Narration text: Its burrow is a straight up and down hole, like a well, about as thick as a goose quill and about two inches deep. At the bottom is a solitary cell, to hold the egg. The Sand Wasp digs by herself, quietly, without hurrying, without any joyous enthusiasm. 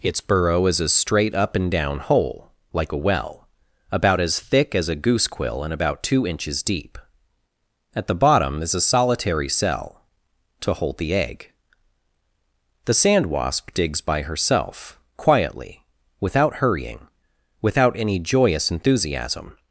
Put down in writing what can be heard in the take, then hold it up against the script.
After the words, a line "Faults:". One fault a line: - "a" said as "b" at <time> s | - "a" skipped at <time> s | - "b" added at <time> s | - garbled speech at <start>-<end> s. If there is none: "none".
Its burrow is a straight up and down hole, like a well, about as thick as a goose quill and about two inches deep. At the bottom is a solitary cell, to hold the egg. The Sand Wasp digs by herself, quietly, without hurrying, without any joyous enthusiasm.
Faults:
none